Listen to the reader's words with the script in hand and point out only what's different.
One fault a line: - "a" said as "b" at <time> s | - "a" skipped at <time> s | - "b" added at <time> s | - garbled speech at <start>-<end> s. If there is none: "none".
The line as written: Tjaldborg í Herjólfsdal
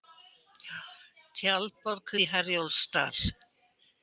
none